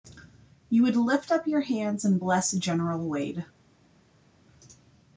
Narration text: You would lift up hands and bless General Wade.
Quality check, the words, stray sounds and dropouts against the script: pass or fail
fail